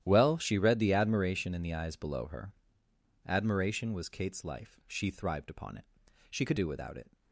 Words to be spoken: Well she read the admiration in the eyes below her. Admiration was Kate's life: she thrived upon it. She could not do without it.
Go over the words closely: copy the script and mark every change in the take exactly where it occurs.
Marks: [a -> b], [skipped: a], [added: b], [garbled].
Well she read the admiration in the eyes below her. Admiration was Kate's life: she thrived upon it. She could [skipped: not] do without it.